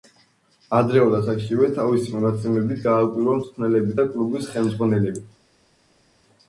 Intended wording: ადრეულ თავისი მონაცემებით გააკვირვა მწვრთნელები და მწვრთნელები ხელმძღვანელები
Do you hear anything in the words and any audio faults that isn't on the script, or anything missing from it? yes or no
yes